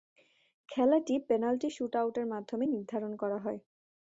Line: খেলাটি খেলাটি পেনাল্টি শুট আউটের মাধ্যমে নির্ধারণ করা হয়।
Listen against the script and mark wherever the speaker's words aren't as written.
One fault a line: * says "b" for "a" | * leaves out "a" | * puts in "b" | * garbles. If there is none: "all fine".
* leaves out "খেলাটি"